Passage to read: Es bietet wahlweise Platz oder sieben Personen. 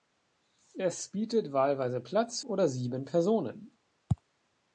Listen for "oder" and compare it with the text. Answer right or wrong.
right